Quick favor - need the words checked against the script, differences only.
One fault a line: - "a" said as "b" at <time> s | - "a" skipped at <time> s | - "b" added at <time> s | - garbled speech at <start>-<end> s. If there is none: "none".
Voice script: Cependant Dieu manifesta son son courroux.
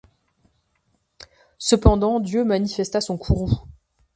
- "son" skipped at 3.2 s